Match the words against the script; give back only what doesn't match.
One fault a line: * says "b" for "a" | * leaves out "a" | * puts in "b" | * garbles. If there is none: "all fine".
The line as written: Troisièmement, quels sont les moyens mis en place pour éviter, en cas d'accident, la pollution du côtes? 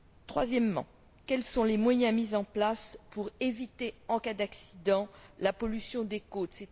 * says "des" for "du"